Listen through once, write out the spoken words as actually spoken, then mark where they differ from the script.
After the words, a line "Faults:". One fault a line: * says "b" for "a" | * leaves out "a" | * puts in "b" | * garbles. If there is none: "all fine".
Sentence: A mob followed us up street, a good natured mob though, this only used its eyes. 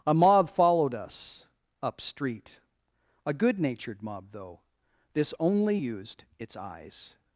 A mob followed us up street, a good natured mob though, this only used its eyes.
Faults:
all fine